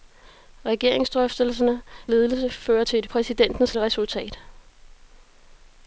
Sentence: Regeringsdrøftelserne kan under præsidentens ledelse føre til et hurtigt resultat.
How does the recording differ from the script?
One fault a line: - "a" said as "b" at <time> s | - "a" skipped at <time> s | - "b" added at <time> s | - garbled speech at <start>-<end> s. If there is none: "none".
- "kan under præsidentens" skipped at 1.8 s
- "hurtigt" said as "præsidentens" at 3.1 s